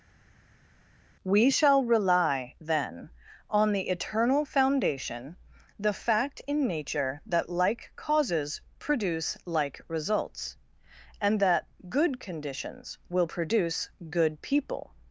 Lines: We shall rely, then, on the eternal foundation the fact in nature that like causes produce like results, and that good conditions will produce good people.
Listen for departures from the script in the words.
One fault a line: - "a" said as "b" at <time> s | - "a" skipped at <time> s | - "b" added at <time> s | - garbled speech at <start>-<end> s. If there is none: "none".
none